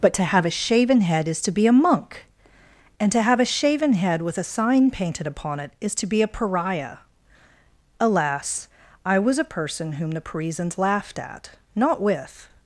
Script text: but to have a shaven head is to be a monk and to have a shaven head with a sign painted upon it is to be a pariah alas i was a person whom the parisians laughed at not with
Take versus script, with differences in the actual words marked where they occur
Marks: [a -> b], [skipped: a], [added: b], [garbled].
but to have a shaven head is to be a monk and to have a shaven head with a sign painted upon it is to be a pariah alas i was a person whom the parisians laughed at not with